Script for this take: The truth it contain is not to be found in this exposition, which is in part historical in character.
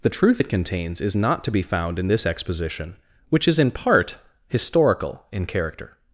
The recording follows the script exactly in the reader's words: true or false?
false